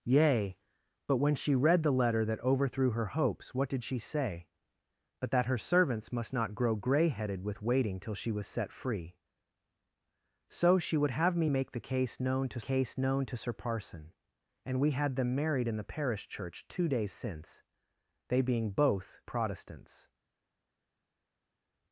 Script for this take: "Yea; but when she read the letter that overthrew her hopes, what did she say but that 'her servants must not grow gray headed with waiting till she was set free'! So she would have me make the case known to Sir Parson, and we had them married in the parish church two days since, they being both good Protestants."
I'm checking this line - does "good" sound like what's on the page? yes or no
no